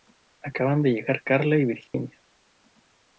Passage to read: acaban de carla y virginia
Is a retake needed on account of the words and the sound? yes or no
yes